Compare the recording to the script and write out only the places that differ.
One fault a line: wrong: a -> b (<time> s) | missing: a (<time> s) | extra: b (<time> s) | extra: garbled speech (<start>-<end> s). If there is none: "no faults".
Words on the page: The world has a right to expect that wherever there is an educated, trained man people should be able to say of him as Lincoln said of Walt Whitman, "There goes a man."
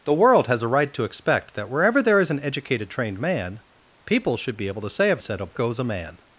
missing: him as Lincoln (5.2 s)
missing: Walt Whitman There (5.5 s)